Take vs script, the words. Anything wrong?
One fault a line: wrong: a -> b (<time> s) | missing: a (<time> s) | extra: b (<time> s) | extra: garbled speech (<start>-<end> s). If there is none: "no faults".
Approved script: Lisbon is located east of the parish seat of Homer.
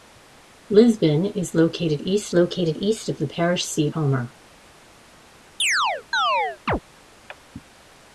extra: located east (2.3 s)
missing: of (3.9 s)